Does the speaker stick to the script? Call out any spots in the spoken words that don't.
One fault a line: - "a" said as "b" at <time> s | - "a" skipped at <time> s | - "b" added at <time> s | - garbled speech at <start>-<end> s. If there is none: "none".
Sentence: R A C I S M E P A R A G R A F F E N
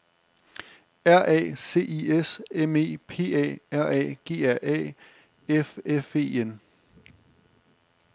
none